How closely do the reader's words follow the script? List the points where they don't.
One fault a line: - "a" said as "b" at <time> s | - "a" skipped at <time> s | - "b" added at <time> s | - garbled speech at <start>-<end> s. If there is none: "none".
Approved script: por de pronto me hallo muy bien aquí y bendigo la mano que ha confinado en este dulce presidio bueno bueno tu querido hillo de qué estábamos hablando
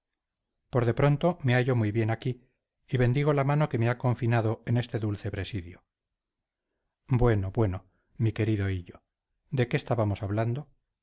- "me" added at 3.8 s
- "tu" said as "mi" at 8.2 s